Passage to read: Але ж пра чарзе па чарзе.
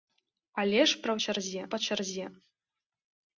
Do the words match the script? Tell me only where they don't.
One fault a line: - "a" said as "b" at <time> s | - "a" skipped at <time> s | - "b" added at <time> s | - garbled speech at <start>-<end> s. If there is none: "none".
none